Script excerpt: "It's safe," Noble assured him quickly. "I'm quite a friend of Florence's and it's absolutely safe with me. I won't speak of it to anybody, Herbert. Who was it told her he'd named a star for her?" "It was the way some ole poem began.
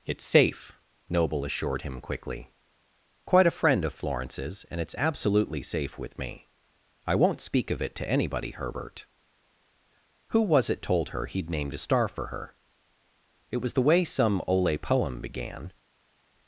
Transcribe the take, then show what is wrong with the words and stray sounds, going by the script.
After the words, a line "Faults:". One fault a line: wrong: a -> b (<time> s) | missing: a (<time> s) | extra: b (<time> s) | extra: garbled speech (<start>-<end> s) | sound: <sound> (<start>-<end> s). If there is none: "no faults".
"It's safe," Noble assured him quickly. "Quite a friend of Florence's and it's absolutely safe with me. I won't speak of it to anybody, Herbert. Who was it told her he'd named a star for her?" "It was the way some ole poem began.
Faults:
missing: I'm (2.5 s)